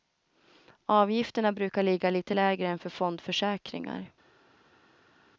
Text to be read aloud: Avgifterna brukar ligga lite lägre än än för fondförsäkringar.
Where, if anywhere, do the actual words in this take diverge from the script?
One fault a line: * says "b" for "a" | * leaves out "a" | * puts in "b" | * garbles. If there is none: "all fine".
* leaves out "än"